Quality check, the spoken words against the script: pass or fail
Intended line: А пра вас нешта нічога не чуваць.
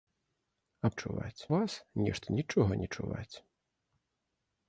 fail